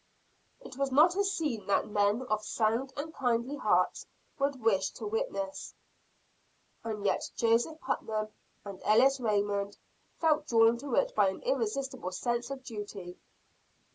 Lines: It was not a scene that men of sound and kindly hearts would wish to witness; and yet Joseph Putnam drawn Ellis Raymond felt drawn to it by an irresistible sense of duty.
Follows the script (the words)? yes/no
no